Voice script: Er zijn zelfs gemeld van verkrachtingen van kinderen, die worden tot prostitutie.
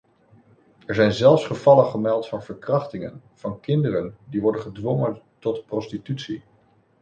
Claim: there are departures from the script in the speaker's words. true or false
true